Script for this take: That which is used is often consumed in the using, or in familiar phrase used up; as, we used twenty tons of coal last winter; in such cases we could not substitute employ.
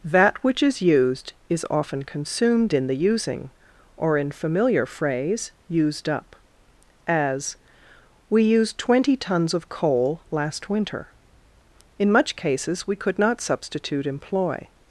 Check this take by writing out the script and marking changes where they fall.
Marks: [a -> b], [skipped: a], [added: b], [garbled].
That which is used is often consumed in the using, or in familiar phrase used up; as, we used twenty tons of coal last winter; in [such -> much] cases we could not substitute employ.